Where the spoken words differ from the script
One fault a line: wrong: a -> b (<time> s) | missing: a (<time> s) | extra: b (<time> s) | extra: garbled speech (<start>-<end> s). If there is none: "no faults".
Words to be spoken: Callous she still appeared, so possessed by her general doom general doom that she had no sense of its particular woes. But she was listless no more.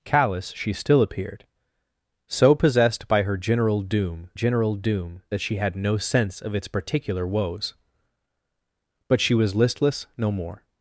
no faults